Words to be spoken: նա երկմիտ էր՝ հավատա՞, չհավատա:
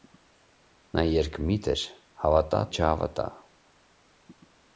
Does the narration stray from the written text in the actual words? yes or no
no